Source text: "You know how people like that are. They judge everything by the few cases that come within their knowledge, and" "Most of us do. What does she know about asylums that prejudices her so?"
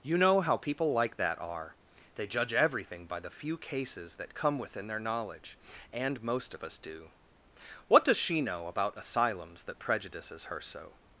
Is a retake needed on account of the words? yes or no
no